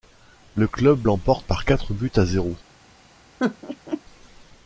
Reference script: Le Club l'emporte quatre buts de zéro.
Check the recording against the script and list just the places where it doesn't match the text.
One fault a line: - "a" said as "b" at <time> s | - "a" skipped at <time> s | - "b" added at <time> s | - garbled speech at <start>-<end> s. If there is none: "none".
- "par" added at 1.5 s
- "de" said as "à" at 2.2 s